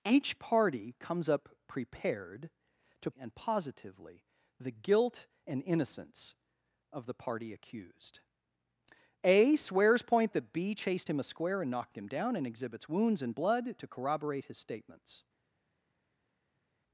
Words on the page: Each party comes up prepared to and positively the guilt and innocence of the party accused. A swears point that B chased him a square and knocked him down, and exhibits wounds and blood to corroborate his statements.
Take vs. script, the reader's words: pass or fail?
pass